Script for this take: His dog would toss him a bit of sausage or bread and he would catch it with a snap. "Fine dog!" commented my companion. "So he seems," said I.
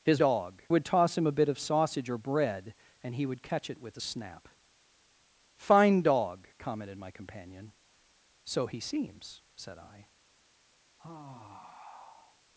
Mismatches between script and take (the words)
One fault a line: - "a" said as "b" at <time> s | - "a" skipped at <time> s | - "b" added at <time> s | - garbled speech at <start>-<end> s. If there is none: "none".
none